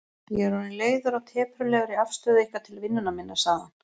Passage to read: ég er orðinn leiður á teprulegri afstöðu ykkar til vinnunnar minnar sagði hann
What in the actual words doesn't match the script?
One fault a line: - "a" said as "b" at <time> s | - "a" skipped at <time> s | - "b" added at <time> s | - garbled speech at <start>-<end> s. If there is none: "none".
none